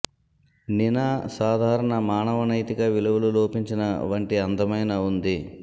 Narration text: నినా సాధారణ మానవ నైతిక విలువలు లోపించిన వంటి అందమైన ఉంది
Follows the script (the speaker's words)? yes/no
yes